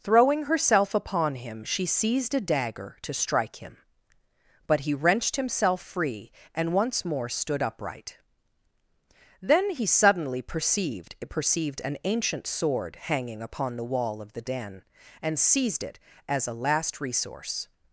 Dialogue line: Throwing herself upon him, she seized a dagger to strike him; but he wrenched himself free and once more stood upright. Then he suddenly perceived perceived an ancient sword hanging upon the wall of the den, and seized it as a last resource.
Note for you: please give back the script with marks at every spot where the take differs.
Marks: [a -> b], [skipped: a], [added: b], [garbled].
Throwing herself upon him, she seized a dagger to strike him; but he wrenched himself free and once more stood upright. Then he suddenly perceived perceived an ancient sword hanging upon the wall of the den, and seized it as a last resource.